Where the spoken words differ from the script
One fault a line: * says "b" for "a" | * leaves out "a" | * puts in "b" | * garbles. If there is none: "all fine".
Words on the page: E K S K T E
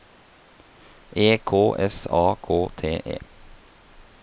* puts in "A"